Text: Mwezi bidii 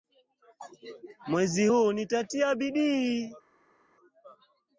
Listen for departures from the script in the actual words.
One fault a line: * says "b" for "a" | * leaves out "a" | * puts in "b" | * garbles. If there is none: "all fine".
* puts in "huu nitatia"